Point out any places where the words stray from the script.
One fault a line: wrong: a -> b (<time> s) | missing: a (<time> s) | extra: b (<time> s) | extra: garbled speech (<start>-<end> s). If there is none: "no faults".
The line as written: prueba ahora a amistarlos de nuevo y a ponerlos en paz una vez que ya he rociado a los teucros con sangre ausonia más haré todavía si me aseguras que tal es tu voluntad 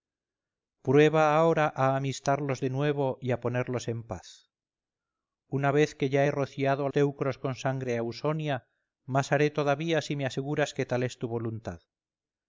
missing: los (6.9 s)